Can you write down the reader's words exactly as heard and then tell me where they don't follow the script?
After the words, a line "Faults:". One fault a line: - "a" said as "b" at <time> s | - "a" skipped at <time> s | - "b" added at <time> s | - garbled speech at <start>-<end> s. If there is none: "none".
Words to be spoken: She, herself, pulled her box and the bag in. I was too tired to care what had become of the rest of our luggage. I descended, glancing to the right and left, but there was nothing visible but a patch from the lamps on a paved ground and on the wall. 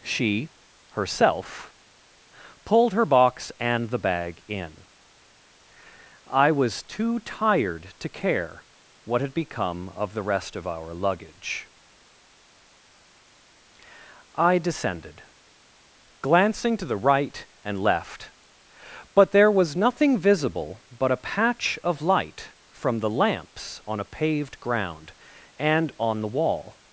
She, herself, pulled her box and the bag in. I was too tired to care what had become of the rest of our luggage. I descended, glancing to the right and left, but there was nothing visible but a patch of light from the lamps on a paved ground and on the wall.
Faults:
- "of light" added at 21.8 s